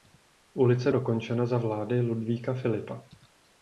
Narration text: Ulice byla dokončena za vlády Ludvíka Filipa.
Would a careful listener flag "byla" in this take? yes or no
yes